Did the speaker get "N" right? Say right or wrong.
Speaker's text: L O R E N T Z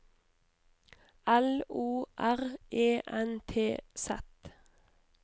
right